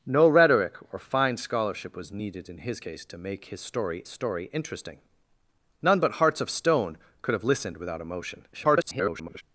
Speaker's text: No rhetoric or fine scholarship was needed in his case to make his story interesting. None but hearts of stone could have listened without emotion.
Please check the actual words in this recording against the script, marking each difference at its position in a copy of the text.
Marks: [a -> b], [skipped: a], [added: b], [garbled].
No rhetoric or fine scholarship was needed in his case to make his story [added: story] interesting. None but hearts of stone could have listened without emotion. [garbled]